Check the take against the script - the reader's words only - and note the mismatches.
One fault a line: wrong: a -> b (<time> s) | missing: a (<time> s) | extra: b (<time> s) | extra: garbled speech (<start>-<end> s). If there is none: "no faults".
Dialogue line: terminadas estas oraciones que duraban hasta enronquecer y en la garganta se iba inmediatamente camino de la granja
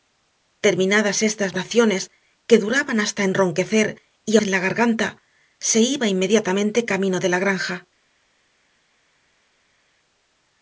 no faults